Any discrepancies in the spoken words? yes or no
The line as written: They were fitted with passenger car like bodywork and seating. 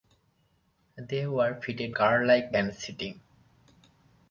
yes